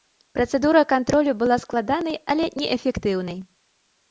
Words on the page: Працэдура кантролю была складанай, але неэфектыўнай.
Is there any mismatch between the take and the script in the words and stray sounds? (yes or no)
no